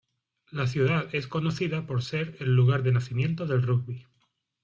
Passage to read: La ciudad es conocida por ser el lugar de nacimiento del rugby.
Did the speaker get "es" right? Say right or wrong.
right